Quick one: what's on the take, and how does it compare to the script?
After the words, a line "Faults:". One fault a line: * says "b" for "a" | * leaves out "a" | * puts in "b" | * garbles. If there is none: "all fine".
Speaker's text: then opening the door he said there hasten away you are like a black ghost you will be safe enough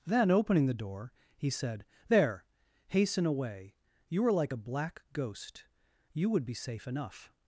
then opening the door he said there hasten away you are like a black ghost you would be safe enough
Faults:
* says "would" for "will"